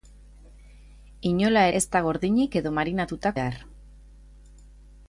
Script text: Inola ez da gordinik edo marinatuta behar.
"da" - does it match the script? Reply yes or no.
yes